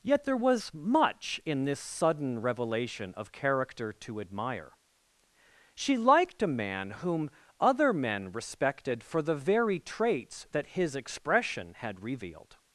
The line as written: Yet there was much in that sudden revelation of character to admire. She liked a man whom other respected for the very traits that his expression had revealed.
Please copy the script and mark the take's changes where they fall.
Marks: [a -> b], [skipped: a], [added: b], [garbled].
Yet there was much in [that -> this] sudden revelation of character to admire. She liked a man whom other [added: men] respected for the very traits that his expression had revealed.